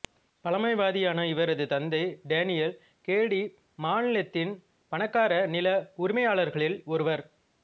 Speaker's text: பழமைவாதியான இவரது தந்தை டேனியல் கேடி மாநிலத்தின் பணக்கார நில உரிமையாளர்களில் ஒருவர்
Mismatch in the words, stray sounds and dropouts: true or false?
false